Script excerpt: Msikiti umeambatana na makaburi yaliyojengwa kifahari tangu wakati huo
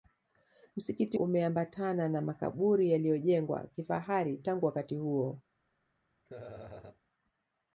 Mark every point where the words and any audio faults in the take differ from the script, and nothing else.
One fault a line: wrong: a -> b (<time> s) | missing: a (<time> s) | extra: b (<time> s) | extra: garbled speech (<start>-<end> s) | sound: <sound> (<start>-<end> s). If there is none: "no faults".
sound: laugh (6.3-7.0 s)